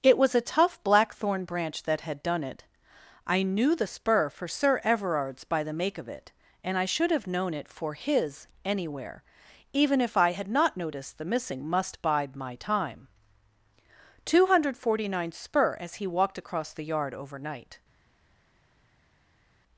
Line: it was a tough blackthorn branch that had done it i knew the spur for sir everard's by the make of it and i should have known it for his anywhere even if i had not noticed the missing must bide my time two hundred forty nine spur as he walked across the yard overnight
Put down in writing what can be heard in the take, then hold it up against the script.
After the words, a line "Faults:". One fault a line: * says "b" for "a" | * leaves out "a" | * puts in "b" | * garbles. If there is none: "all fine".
it was a tough blackthorn branch that had done it i knew the spur for sir everard's by the make of it and i should have known it for his anywhere even if i had not noticed the missing must bide my time two hundred forty nine spur as he walked across the yard overnight
Faults:
all fine